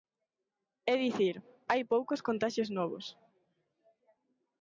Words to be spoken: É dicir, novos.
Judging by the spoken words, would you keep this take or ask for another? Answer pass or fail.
fail